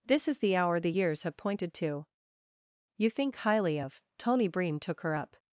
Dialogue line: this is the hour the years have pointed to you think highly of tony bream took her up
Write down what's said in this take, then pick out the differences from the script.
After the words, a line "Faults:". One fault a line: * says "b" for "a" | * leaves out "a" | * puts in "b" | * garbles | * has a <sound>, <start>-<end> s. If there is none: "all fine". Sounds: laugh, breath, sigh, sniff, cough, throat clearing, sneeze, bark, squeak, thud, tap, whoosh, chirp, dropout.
this is the hour the years have pointed to you think highly of tony bream took her up
Faults:
all fine